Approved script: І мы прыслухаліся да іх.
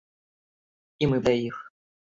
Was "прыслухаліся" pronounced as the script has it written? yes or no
no